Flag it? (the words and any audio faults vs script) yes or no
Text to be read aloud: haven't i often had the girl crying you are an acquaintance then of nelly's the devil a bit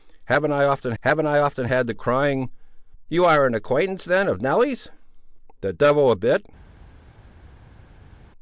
yes